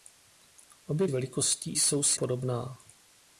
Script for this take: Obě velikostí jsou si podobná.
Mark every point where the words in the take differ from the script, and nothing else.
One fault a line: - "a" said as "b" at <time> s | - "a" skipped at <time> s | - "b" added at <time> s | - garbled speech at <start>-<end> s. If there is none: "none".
none